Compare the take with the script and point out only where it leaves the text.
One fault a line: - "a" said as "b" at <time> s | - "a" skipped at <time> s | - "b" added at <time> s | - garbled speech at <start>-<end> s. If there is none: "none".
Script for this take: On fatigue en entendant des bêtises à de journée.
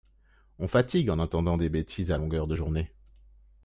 - "longueur" added at 2.1 s